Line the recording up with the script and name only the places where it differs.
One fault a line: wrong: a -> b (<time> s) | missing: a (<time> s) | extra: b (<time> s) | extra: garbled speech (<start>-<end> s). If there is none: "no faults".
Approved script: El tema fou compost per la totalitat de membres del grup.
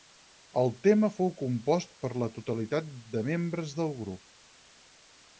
no faults